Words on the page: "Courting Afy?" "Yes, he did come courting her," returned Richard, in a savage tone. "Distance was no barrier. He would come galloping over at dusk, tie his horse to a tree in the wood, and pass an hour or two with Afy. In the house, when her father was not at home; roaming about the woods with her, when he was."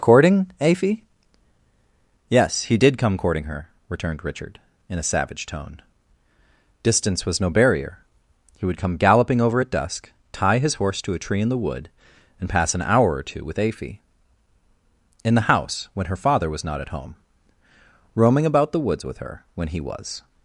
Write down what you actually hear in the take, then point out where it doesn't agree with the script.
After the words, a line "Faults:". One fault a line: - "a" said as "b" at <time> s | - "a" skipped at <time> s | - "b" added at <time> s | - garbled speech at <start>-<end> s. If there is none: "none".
"Courting Afy?" "Yes, he did come courting her," returned Richard, in a savage tone. "Distance was no barrier. He would come galloping over at dusk, tie his horse to a tree in the wood, and pass an hour or two with Afy. In the house, when her father was not at home; roaming about the woods with her, when he was."
Faults:
none